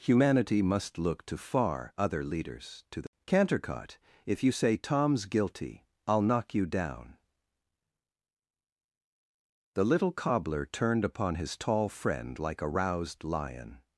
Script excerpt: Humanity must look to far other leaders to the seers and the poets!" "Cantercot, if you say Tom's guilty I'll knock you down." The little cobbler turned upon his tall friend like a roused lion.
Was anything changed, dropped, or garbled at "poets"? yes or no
yes